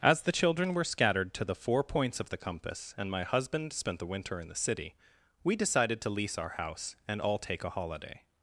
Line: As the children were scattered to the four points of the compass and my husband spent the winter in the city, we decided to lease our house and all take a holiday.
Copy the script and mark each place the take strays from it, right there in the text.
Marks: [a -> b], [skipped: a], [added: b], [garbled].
As the children were scattered to the four points of the compass and my husband spent the winter in the city, we decided to lease our house and all take a holiday.